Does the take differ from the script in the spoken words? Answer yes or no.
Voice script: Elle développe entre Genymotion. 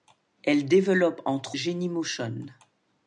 no